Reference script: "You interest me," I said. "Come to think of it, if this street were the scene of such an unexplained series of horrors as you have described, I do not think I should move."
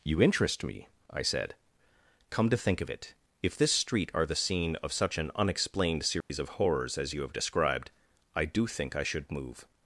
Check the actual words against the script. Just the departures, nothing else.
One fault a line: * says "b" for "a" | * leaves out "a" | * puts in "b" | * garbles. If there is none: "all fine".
* says "are" for "were"
* leaves out "not"